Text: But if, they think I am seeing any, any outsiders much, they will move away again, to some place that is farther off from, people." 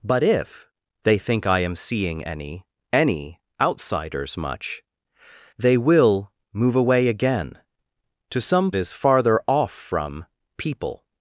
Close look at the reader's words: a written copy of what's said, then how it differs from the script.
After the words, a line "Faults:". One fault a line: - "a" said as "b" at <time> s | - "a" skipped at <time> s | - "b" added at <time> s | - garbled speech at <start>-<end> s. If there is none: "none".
But if, they think I am seeing any, any outsiders much, they will move away again, to some is farther off from, people."
Faults:
- "place that" skipped at 8.7 s